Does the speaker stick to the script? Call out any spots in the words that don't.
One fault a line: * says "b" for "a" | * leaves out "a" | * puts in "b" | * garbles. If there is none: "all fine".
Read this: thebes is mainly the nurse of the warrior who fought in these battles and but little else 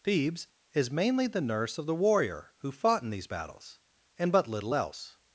all fine